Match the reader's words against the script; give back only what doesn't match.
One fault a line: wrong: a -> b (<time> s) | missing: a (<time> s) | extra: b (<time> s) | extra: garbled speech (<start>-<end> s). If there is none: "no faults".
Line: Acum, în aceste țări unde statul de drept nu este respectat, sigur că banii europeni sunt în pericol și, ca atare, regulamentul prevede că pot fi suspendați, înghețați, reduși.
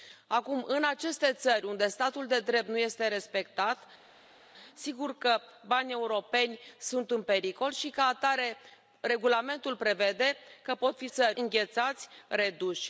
wrong: suspendați -> țări (11.1 s)